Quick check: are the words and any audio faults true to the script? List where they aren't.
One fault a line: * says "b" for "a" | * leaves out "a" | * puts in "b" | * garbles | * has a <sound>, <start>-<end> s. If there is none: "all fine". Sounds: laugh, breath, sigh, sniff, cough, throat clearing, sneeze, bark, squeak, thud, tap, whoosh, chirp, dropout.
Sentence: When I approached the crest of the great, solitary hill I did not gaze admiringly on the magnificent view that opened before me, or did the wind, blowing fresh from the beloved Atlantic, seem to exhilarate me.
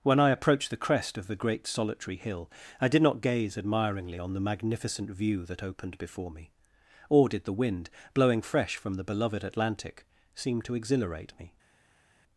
all fine